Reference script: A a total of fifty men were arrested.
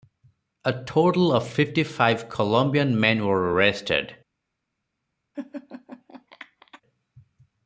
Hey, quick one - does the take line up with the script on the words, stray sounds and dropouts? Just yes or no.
no